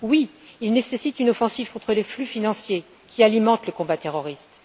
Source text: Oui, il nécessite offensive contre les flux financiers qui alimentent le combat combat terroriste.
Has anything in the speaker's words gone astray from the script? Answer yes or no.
yes